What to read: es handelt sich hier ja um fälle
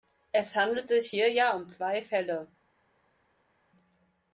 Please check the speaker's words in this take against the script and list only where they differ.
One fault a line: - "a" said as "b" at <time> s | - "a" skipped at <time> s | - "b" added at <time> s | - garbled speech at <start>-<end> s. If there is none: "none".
- "zwei" added at 1.7 s